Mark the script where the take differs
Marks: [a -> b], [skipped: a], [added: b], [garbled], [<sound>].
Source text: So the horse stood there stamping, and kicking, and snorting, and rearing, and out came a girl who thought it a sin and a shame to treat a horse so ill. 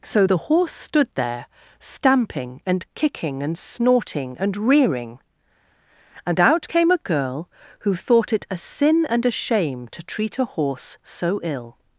So the horse stood there stamping, and kicking, and snorting, and rearing, and out came a girl who thought it a sin and a shame to treat a horse so ill.